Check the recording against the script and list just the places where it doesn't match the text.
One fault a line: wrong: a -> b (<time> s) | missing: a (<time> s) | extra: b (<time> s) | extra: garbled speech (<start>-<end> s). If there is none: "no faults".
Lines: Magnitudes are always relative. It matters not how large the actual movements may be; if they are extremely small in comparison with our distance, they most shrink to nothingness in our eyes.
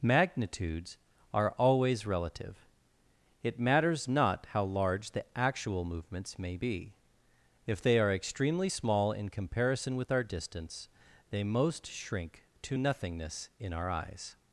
no faults